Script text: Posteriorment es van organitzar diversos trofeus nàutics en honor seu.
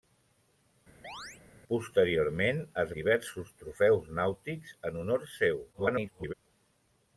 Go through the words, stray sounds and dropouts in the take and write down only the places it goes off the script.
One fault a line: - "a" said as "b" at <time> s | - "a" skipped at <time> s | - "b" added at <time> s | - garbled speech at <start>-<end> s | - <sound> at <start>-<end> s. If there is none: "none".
- chirp at 1.0-1.4 s
- "van organitzar" skipped at 2.9 s
- garbled speech at 5.7-6.3 s